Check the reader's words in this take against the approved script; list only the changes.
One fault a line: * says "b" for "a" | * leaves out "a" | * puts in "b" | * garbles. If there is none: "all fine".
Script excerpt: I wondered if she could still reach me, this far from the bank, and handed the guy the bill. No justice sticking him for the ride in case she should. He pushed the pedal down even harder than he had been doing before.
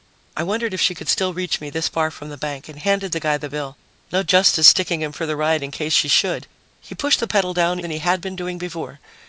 * leaves out "even harder"